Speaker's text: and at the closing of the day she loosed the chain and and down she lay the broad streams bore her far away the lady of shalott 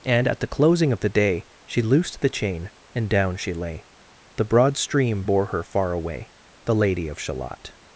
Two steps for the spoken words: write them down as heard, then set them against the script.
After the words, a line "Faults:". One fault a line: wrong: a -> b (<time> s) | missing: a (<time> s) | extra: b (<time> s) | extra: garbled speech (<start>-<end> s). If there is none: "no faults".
and at the closing of the day she loosed the chain and down she lay the broad stream bore her far away the lady of shalott
Faults:
missing: and (3.1 s)
wrong: streams -> stream (4.8 s)